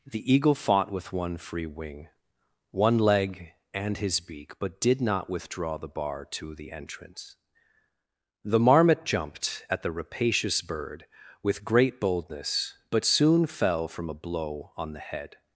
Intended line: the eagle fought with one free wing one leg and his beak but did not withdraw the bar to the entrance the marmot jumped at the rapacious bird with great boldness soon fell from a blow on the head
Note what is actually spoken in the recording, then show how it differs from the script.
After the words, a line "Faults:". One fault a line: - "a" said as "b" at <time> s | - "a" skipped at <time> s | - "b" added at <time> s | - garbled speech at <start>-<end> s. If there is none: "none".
the eagle fought with one free wing one leg and his beak but did not withdraw the bar to the entrance the marmot jumped at the rapacious bird with great boldness but soon fell from a blow on the head
Faults:
- "but" added at 12.9 s